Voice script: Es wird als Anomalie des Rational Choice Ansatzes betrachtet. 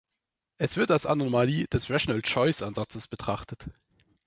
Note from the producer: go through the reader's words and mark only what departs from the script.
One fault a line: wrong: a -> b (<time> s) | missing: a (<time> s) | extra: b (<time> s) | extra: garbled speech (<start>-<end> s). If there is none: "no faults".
no faults